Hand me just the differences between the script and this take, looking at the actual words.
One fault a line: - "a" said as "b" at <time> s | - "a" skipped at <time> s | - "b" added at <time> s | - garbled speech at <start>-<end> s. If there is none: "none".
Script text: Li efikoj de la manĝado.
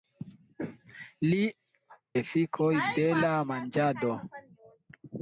none